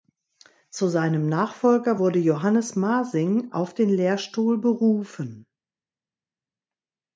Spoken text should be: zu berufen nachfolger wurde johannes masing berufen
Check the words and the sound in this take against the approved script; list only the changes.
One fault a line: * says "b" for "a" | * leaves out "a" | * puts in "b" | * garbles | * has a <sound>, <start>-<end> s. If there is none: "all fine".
* says "seinem" for "berufen"
* puts in "auf den lehrstuhl"